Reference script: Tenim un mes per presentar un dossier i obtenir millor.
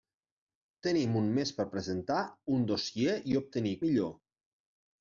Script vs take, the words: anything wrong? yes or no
no